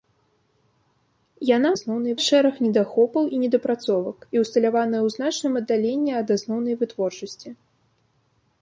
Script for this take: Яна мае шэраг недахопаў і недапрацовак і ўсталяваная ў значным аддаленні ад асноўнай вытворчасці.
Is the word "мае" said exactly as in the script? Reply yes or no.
no